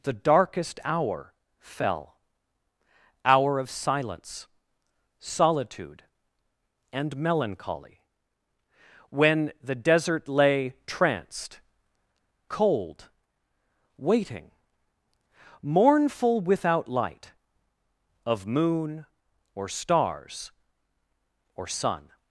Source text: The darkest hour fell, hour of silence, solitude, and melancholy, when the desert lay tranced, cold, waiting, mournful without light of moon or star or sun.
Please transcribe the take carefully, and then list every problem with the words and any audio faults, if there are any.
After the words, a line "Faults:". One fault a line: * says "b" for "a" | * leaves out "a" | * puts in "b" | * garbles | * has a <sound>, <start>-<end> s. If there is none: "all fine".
The darkest hour fell, hour of silence, solitude, and melancholy, when the desert lay tranced, cold, waiting, mournful without light of moon or stars or sun.
Faults:
* says "stars" for "star"